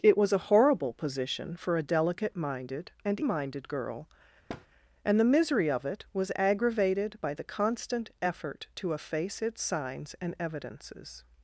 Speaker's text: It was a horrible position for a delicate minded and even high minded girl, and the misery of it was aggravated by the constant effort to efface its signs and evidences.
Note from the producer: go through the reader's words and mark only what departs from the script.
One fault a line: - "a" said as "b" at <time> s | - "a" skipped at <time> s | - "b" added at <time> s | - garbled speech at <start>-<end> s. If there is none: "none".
- "even high" skipped at 3.2 s